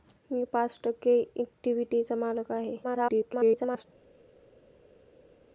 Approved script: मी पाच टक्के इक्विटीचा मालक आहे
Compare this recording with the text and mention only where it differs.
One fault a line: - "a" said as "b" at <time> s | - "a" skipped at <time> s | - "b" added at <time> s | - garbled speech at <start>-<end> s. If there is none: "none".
- garbled speech at 2.8-3.8 s